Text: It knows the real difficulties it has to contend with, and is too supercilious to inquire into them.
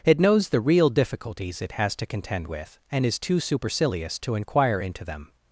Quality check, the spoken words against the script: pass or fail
pass